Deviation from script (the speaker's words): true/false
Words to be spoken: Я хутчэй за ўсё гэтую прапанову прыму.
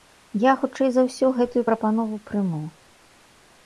false